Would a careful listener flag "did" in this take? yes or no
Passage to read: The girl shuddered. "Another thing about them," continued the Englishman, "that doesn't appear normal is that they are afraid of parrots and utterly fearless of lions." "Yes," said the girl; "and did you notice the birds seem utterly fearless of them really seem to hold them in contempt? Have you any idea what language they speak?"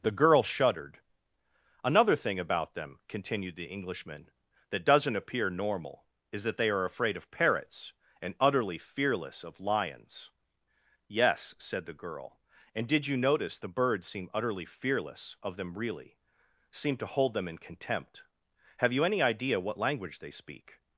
no